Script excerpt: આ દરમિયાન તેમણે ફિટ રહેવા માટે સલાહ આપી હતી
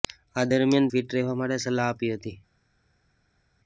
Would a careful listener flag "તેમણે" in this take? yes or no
yes